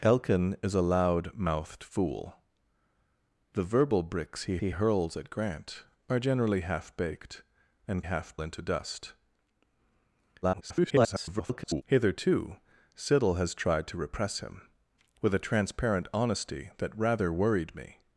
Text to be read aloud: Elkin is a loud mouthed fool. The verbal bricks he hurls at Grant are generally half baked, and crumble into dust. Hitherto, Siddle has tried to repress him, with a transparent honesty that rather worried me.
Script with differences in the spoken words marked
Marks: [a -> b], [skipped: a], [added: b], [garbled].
Elkin is a loud mouthed fool. The verbal bricks he [added: he] hurls at Grant are generally half baked, and [crumble -> half] into dust. [garbled] Hitherto, Siddle has tried to repress him, with a transparent honesty that rather worried me.